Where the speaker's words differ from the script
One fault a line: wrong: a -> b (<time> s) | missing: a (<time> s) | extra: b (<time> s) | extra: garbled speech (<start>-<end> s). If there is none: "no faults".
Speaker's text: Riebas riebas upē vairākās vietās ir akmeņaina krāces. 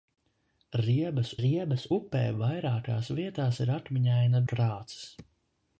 no faults